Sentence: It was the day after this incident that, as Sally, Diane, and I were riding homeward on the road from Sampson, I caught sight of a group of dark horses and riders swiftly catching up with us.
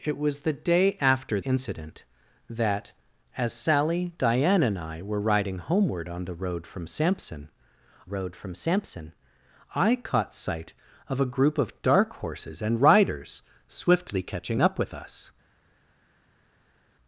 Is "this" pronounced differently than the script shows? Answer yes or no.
yes